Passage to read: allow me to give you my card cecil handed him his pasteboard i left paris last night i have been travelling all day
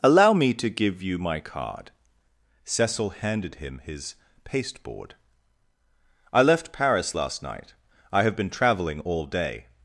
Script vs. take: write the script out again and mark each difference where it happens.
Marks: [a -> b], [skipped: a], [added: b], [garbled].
allow me to give you my card cecil handed him his pasteboard i left paris last night i have been travelling all day